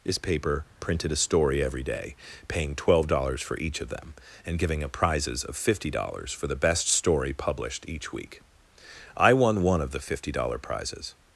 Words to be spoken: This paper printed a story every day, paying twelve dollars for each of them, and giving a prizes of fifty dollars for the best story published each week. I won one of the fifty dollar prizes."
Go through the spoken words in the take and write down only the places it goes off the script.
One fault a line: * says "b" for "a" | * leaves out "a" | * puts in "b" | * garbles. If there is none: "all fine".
all fine